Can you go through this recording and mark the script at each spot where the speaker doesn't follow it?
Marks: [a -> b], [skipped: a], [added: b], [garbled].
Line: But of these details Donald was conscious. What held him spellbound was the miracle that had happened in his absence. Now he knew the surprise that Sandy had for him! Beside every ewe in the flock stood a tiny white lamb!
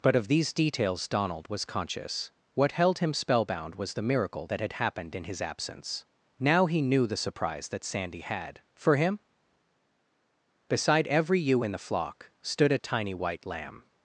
But of these details Donald was conscious. What held him spellbound was the miracle that had happened in his absence. Now he knew the surprise that Sandy had for him! Beside every ewe in the flock stood a tiny white lamb!